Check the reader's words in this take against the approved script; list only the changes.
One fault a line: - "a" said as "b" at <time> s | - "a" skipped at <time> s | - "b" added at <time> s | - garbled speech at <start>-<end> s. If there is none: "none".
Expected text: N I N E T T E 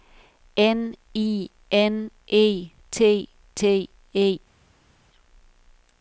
none